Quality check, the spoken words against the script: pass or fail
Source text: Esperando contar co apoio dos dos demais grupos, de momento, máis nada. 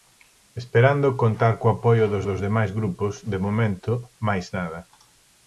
pass